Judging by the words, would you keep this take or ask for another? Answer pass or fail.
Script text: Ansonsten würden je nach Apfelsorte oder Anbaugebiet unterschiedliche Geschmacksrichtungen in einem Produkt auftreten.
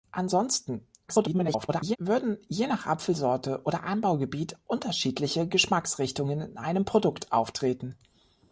fail